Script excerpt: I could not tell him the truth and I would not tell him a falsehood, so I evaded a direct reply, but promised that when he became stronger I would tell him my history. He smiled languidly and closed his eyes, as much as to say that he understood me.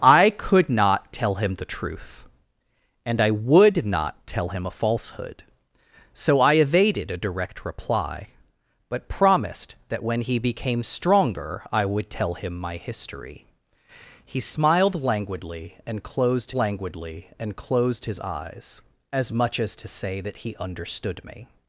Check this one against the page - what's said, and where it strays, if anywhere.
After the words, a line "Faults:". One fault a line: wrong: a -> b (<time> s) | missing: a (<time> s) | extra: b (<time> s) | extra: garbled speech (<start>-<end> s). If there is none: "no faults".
I could not tell him the truth and I would not tell him a falsehood, so I evaded a direct reply, but promised that when he became stronger I would tell him my history. He smiled languidly and closed languidly and closed his eyes, as much as to say that he understood me.
Faults:
extra: languidly and closed (16.5 s)